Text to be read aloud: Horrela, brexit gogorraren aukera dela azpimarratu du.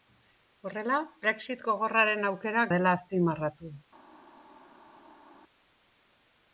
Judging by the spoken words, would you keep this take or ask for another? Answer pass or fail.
pass